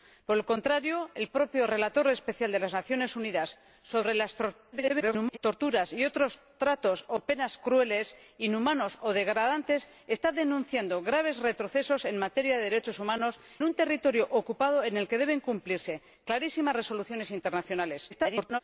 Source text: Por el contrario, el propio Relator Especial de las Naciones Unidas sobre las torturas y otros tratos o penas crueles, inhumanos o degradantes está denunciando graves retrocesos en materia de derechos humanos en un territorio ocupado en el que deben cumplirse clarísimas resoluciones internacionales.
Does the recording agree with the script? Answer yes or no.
no